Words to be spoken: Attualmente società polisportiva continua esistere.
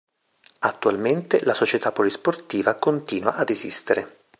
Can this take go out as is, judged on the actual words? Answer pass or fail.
fail